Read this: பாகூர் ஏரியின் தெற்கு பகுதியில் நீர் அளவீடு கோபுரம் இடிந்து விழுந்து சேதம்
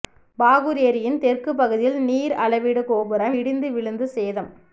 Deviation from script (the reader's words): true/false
false